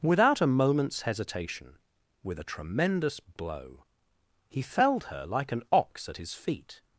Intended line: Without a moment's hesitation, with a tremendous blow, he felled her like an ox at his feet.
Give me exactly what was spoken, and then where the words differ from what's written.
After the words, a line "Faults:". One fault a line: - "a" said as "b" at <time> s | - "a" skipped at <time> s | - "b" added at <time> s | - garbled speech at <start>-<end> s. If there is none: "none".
Without a moment's hesitation, with a tremendous blow, he felled her like an ox at his feet.
Faults:
none